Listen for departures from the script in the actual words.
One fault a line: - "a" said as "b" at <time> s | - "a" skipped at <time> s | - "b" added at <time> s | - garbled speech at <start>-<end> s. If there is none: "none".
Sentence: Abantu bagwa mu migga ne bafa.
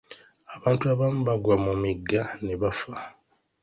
- "abamu" added at 0.9 s